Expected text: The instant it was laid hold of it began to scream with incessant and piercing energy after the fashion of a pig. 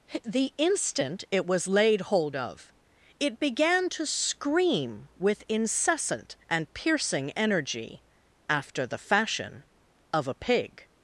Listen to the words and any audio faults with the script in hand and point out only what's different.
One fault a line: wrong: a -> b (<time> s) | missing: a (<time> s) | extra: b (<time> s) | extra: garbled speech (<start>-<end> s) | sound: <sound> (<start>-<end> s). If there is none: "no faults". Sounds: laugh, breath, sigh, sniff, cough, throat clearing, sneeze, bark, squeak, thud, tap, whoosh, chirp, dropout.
no faults